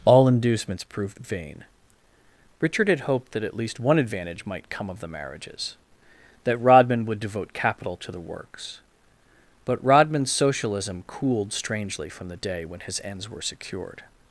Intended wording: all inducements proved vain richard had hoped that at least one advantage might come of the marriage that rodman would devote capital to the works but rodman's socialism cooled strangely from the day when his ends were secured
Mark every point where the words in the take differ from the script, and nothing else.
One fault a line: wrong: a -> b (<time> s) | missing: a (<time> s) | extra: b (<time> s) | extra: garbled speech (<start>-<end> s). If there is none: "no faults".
wrong: marriage -> marriages (5.1 s)